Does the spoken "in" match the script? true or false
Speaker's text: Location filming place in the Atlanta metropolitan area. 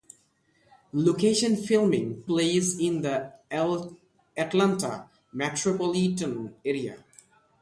true